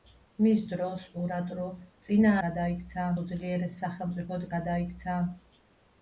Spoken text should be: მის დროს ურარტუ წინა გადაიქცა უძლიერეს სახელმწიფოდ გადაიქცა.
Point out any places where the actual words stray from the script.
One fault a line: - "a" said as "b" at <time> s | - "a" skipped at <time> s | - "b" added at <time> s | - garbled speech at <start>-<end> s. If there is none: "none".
none